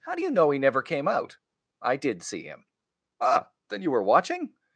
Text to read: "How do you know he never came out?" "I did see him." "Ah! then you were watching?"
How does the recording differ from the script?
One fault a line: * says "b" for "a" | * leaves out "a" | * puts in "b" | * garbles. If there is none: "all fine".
all fine